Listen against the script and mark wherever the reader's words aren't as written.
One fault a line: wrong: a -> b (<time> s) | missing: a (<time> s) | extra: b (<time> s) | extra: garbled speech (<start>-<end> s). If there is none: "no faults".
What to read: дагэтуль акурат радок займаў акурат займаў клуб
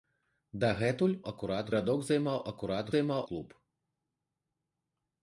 no faults